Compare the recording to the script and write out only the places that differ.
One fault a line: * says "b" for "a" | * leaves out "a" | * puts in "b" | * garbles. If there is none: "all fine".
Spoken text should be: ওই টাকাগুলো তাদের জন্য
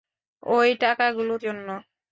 * leaves out "তাদের"